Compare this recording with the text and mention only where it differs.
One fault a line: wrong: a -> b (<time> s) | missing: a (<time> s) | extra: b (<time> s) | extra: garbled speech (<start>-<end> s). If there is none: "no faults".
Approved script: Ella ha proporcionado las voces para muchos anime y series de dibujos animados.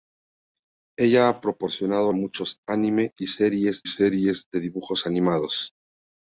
missing: las voces para (2.1 s)
extra: series (3.8 s)